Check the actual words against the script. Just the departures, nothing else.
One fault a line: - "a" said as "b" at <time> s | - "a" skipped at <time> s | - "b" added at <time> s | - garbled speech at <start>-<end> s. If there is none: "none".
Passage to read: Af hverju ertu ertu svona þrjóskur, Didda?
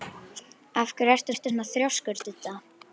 none